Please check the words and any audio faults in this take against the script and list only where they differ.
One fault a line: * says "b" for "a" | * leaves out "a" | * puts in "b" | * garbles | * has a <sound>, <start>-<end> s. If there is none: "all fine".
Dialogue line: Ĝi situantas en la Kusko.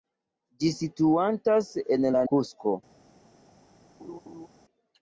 * has a laugh, 4.0-4.5 s